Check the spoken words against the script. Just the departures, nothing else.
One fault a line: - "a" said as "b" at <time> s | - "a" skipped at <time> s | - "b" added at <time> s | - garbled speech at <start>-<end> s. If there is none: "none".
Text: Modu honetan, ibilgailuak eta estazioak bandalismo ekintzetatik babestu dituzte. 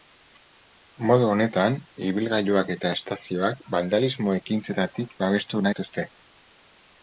none